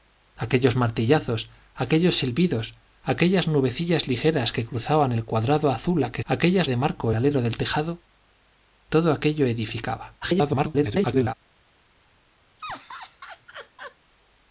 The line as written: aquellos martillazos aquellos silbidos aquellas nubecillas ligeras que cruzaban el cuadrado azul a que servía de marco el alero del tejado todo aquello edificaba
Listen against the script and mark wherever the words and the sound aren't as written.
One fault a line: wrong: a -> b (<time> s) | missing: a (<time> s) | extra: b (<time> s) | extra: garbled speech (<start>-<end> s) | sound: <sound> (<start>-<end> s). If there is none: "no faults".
wrong: servía -> aquellas (6.2 s)
missing: el (7.1 s)
extra: garbled speech (10.2-11.3 s)
sound: laugh (12.6-14.0 s)